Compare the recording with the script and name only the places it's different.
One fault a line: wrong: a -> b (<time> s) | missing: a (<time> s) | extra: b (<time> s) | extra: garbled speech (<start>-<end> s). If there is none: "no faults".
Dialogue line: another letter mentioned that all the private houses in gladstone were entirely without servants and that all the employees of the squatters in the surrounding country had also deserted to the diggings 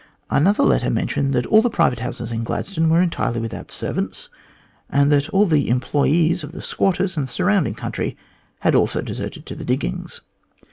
no faults